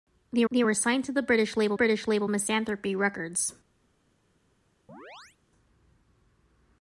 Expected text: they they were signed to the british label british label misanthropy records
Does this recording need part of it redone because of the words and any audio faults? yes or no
yes